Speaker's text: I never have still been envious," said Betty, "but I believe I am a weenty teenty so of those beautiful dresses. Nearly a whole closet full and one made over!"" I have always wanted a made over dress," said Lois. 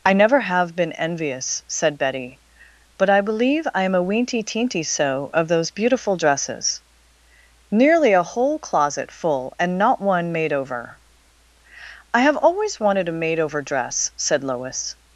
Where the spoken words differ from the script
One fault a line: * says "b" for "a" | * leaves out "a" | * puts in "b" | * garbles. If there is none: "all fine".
* leaves out "still"
* puts in "not"